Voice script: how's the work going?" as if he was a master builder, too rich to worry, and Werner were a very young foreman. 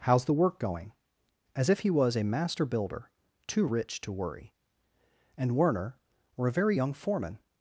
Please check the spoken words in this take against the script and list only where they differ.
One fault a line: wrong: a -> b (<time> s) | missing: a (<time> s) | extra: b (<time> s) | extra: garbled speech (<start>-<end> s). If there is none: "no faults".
no faults